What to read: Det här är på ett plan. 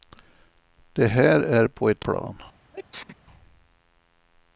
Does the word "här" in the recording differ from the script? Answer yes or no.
no